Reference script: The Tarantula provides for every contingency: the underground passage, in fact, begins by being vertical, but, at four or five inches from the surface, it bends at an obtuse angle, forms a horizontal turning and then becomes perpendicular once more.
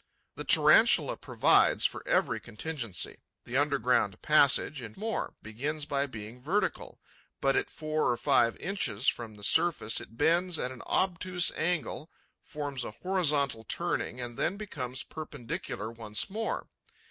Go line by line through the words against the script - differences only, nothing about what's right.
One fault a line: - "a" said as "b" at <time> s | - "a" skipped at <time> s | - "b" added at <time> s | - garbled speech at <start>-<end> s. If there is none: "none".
- "fact" said as "more" at 5.0 s